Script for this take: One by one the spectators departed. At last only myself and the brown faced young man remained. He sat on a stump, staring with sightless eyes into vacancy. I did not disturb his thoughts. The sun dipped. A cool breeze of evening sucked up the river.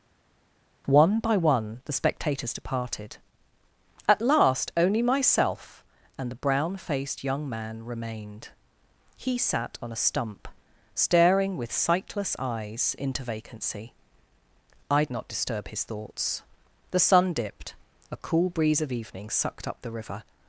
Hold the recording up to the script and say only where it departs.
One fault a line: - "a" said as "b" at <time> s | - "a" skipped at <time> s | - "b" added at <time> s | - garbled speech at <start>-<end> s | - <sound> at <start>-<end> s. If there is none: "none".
- "did" skipped at 15.0 s